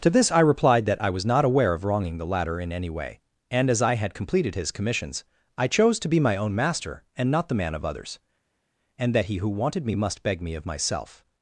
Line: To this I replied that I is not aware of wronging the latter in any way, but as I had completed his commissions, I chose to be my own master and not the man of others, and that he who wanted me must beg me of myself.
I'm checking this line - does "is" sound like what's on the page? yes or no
no